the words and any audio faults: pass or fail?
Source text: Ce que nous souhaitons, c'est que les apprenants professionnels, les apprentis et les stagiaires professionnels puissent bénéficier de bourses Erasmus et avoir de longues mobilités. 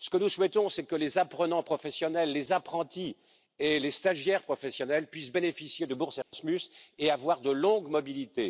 fail